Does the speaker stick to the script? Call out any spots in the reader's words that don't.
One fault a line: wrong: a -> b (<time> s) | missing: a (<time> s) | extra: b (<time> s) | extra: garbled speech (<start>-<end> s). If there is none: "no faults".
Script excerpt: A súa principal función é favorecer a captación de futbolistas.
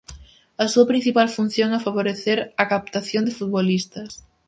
no faults